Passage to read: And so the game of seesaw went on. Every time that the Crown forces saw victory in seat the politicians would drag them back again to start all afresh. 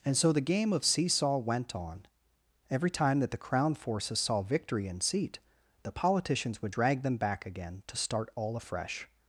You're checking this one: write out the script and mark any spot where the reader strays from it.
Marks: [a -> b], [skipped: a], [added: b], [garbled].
And so the game of seesaw went on. Every time that the Crown forces saw victory in seat the politicians would drag them back again to start all afresh.